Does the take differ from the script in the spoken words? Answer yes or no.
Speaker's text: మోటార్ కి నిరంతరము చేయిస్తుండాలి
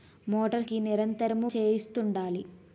no